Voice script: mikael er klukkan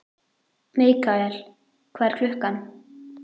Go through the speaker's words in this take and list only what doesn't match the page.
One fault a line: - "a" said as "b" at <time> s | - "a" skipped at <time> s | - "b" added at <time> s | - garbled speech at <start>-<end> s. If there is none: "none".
- "hvað" added at 2.0 s